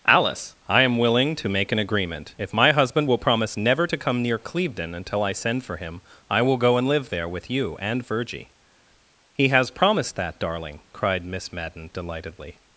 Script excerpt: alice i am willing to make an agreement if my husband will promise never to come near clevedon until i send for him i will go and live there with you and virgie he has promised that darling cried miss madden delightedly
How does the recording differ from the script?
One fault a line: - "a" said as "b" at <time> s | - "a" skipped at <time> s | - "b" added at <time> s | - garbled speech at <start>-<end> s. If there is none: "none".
none